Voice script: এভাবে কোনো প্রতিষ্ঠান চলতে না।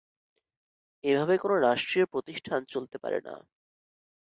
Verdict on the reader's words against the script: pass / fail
fail